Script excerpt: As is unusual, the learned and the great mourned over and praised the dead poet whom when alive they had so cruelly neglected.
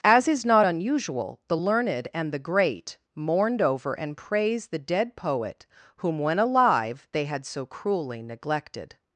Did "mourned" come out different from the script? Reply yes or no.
no